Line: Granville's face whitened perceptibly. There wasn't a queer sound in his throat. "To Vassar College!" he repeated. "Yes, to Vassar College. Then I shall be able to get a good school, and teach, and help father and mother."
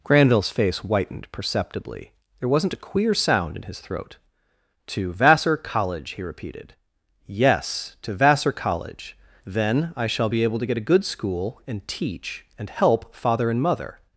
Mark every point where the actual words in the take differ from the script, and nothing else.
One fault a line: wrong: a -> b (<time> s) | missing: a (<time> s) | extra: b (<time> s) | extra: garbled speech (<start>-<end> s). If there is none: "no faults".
no faults